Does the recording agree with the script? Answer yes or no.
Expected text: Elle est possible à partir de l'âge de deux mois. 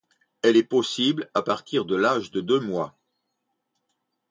yes